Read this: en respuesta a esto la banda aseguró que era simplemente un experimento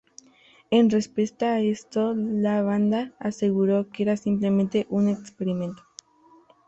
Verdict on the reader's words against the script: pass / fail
pass